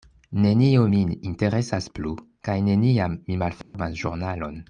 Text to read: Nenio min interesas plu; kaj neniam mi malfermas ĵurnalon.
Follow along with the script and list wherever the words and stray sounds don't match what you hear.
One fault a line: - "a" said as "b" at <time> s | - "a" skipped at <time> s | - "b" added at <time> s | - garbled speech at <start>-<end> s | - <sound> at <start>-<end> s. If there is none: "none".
- dropout at 3.6-3.7 s